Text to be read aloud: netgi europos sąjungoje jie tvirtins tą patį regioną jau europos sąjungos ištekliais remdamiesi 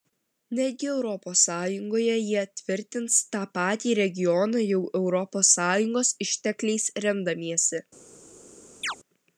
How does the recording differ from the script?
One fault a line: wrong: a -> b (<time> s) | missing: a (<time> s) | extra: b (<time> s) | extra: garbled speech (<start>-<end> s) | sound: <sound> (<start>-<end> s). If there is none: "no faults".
sound: chirp (8.8-9.0 s)